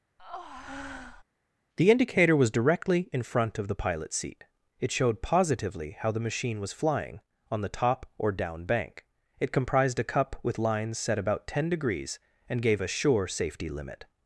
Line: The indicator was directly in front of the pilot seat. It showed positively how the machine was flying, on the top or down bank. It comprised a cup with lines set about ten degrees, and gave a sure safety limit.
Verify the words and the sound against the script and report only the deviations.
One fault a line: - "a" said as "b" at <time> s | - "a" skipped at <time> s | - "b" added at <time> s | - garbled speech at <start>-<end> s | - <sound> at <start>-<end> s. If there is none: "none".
- breath at 0.2-1.2 s